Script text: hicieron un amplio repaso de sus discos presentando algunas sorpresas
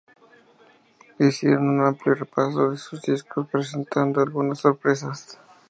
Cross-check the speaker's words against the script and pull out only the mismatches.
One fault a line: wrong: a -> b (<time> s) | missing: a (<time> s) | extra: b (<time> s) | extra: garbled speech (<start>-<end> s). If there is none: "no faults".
no faults